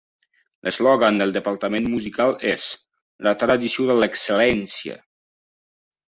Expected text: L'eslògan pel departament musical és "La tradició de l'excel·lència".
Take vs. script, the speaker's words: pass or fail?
fail